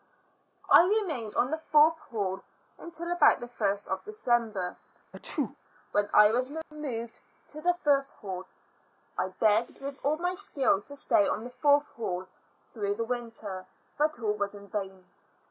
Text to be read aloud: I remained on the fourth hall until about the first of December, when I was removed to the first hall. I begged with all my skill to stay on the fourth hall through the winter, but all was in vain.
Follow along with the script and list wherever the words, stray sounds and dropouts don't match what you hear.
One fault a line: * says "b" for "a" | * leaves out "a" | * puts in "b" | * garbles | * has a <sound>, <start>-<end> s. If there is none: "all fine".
* has a sneeze, 5.1-5.6 s
* has a dropout, 6.6-6.7 s